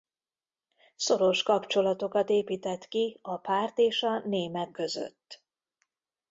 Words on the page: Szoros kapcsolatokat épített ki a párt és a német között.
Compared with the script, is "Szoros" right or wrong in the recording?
right